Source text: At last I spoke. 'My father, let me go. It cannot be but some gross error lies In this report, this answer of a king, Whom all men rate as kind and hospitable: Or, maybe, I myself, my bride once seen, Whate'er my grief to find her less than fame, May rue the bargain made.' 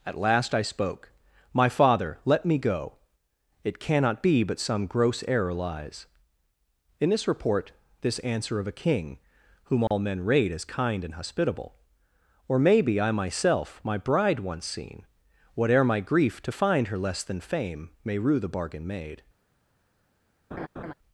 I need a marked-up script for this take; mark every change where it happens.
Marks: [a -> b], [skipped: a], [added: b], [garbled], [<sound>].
At last I spoke. 'My father, let me go. It cannot be but some gross error lies In this report, this answer of a king, Whom all [dropout] men rate as kind and hospitable: Or, maybe, I myself, my bride once seen, Whate'er my grief to find her less than fame, May rue the bargain made.' [laugh]